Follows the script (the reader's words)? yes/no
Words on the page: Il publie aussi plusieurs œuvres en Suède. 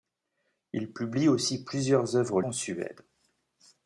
yes